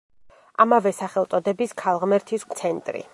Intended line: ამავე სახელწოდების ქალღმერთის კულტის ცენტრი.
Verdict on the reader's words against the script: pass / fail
fail